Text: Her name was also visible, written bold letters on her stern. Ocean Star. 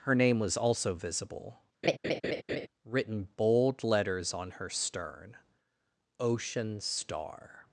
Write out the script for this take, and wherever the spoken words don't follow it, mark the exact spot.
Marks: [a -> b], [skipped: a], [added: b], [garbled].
Her name was also visible, written bold letters on her stern. Ocean Star.